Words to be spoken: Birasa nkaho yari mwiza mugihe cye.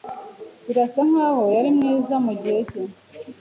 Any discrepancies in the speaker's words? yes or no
no